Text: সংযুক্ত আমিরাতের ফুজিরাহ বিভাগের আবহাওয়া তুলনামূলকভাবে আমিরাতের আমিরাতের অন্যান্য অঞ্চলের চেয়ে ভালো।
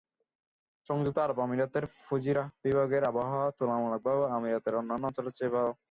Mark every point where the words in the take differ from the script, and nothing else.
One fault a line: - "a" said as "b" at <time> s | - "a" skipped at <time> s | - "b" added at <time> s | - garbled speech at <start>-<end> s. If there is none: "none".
- "আরব" added at 1.2 s
- "আমিরাতের" skipped at 4.8 s